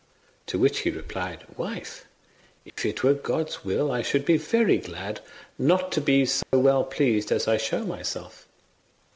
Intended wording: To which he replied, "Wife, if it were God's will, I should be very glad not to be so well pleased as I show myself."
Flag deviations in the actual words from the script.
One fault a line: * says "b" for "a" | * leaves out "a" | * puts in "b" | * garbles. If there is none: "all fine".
all fine